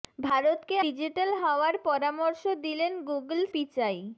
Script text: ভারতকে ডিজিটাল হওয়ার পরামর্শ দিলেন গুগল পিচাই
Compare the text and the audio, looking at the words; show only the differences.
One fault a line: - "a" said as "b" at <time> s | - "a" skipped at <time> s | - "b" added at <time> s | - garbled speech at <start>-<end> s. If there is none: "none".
none